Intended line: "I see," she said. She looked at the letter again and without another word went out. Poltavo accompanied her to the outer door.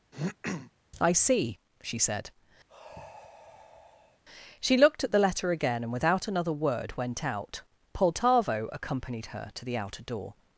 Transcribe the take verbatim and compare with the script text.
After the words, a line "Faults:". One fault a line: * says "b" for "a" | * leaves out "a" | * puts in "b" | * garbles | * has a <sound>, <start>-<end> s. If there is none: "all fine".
"I see," she said. She looked at the letter again and without another word went out. Poltavo accompanied her to the outer door.
Faults:
* has a throat clearing, 0.1-0.7 s
* has a sigh, 2.7-4.2 s